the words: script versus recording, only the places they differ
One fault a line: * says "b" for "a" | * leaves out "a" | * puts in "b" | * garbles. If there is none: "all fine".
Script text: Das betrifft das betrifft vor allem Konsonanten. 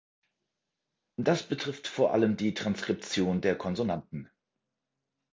* says "vor allem die Transkription der" for "das betrifft vor allem"